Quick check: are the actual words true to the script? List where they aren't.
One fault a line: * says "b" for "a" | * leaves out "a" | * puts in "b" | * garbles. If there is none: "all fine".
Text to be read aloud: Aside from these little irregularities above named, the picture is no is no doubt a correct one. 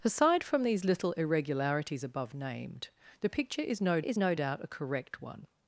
all fine